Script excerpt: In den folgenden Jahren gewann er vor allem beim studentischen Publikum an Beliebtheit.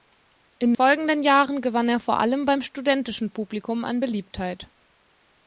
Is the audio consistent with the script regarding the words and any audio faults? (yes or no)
no